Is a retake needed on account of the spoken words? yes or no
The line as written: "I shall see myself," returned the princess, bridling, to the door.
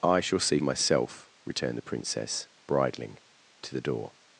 no